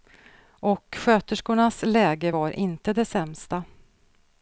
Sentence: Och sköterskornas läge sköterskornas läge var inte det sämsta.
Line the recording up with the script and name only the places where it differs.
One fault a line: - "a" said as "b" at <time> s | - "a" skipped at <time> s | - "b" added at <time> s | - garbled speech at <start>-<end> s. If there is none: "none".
- "sköterskornas läge" skipped at 2.3 s